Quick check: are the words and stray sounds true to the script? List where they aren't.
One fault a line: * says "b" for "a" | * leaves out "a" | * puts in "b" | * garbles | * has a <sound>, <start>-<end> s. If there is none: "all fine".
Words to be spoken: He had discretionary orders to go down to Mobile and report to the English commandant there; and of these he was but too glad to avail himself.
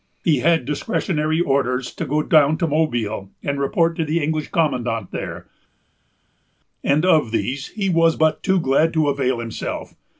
all fine